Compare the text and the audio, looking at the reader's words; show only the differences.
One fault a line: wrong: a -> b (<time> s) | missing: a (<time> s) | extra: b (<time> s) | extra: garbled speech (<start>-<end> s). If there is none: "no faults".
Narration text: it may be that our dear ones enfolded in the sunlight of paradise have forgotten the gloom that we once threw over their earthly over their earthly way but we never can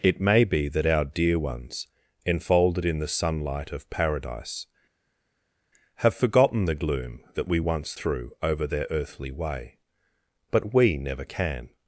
missing: over their earthly (9.3 s)